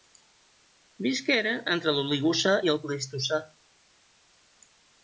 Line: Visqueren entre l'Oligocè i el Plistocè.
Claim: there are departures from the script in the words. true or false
false